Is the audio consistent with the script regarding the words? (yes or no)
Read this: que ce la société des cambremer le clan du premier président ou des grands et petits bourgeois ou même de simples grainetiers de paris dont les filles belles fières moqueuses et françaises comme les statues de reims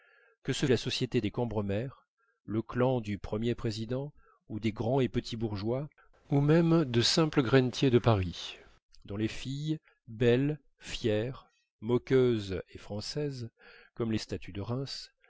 yes